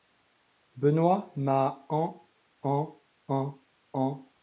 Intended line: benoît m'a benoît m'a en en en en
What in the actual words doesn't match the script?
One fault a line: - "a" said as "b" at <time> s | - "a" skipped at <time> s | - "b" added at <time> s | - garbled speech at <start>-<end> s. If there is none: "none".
- "benoît m'a" skipped at 1.9 s